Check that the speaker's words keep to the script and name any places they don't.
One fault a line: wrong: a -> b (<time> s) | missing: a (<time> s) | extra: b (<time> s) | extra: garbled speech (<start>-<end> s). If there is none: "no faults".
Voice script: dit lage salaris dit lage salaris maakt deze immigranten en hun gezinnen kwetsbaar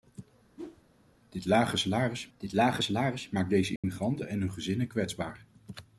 no faults